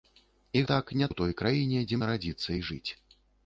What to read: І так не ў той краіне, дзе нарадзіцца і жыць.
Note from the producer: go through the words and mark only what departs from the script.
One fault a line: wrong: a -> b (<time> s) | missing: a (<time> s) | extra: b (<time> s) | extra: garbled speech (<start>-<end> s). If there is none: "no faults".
no faults